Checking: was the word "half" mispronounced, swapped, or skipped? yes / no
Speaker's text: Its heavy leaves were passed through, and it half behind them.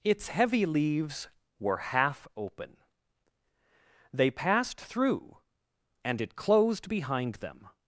yes